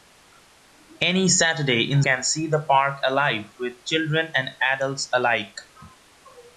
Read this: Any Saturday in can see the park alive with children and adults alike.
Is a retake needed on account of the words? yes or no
no